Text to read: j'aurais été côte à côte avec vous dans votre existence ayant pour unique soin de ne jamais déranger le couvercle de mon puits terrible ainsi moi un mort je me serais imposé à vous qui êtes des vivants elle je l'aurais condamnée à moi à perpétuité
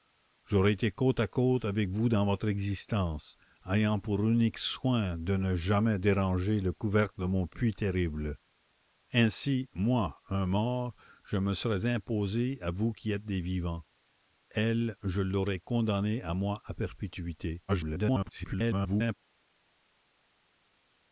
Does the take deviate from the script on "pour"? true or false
false